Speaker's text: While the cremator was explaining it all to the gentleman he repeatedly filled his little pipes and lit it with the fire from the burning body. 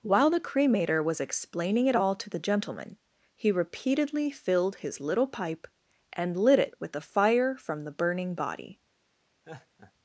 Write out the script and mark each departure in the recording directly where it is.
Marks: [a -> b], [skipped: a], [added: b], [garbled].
While the cremator was explaining it all to the gentleman he repeatedly filled his little [pipes -> pipe] and lit it with the fire from the burning body.